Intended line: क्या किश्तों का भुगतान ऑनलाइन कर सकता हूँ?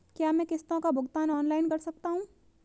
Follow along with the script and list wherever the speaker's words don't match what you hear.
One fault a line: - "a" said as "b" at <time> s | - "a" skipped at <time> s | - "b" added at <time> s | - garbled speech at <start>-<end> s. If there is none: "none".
- "मैं" added at 0.3 s